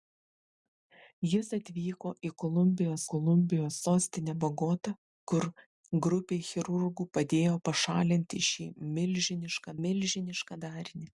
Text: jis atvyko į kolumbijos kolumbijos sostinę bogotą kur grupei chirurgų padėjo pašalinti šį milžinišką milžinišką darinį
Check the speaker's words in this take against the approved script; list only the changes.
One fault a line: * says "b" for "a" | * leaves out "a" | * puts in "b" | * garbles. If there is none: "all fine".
all fine